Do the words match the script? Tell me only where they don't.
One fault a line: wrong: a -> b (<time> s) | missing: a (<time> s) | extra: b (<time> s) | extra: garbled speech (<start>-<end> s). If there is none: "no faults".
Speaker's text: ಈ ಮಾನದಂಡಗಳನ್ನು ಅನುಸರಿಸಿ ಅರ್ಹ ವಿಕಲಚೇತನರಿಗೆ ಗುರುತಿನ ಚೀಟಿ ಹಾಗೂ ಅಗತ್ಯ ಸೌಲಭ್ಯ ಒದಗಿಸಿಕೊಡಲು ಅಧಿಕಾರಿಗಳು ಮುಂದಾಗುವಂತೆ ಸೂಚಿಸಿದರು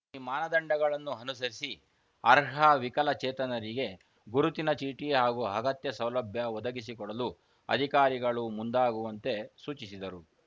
no faults